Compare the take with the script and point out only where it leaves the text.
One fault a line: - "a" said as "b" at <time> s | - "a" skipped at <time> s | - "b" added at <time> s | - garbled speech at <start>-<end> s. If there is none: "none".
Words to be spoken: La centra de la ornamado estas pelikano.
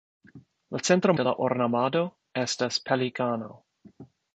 none